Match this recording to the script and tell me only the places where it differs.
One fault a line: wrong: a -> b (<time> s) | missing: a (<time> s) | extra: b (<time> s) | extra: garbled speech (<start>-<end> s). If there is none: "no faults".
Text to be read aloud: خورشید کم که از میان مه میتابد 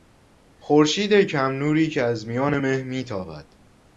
extra: نوری (1.5 s)